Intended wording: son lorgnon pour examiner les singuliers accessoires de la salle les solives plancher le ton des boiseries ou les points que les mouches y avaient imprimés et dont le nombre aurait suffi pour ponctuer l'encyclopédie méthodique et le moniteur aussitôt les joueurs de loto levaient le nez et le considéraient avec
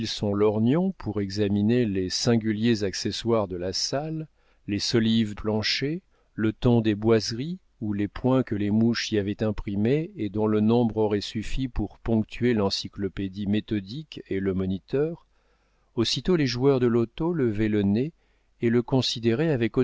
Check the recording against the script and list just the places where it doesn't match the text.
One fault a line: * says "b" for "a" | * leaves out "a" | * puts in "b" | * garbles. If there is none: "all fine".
all fine